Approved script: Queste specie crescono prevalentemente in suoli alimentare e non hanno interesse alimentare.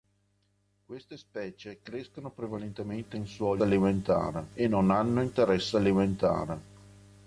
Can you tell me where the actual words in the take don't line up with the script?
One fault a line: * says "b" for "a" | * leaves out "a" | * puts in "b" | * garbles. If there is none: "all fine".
all fine